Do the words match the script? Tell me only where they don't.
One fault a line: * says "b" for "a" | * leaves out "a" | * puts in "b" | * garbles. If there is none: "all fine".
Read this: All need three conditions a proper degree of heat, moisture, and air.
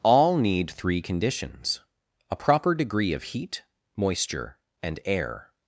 all fine